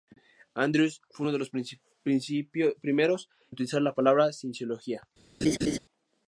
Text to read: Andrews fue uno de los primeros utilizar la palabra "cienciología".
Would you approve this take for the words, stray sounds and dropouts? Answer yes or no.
no